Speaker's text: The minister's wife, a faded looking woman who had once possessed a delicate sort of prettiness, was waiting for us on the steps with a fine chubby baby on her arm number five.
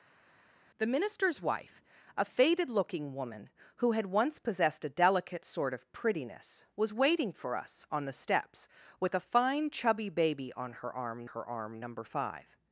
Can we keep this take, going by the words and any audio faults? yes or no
no